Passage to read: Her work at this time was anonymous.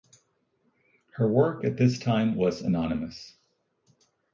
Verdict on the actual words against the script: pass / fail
pass